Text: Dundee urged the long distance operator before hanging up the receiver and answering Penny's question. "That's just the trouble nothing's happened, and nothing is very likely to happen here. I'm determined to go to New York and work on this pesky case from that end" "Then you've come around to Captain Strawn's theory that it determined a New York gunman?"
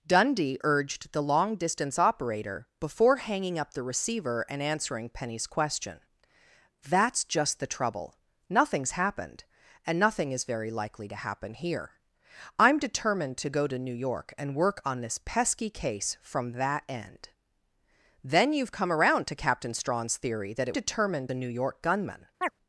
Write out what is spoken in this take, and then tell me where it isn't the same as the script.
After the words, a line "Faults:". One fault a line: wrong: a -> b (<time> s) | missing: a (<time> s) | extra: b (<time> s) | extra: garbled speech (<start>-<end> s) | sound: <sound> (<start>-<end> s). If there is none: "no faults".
Dundee urged the long distance operator before hanging up the receiver and answering Penny's question. "That's just the trouble nothing's happened, and nothing is very likely to happen here. I'm determined to go to New York and work on this pesky case from that end" "Then you've come around to Captain Strawn's theory that it determined a New York gunman?"
Faults:
sound: chirp (22.4-22.5 s)